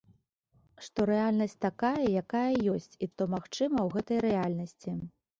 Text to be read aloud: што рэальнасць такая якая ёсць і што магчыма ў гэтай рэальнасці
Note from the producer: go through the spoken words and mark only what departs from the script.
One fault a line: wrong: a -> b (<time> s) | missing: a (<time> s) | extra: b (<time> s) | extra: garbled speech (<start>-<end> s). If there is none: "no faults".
no faults